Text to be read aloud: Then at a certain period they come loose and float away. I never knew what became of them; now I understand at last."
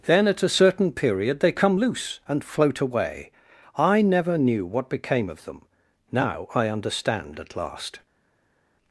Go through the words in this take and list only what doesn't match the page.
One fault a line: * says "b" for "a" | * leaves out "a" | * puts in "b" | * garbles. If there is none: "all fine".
all fine